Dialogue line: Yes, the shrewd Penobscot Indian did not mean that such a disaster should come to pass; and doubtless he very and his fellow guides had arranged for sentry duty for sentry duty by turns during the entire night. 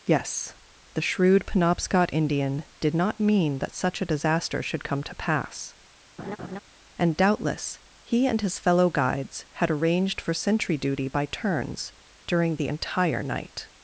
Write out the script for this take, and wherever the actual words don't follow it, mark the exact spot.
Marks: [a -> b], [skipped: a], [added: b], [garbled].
Yes, the shrewd Penobscot Indian did not mean that such a disaster should come to pass; and doubtless he [skipped: very] and his fellow guides had arranged for sentry duty [skipped: for sentry duty] by turns during the entire night.